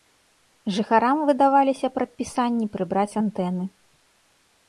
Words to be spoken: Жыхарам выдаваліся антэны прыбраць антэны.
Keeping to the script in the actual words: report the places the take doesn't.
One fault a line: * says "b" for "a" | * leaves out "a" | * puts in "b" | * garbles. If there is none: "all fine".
* says "прадпісанні" for "антэны"